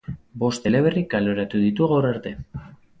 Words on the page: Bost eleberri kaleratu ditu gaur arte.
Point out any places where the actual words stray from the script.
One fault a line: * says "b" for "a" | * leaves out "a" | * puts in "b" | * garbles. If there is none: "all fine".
all fine